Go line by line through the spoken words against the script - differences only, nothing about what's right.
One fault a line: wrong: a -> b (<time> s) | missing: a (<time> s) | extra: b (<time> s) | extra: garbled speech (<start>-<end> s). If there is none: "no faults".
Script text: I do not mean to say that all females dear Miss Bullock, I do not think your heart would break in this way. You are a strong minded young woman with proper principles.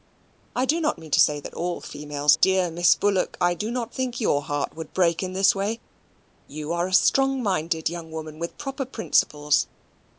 no faults